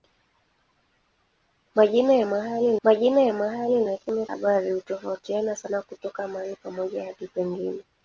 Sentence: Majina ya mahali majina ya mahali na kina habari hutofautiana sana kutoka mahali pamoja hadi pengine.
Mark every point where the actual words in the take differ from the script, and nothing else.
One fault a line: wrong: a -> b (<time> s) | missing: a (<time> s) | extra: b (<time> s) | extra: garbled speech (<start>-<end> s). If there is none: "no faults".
no faults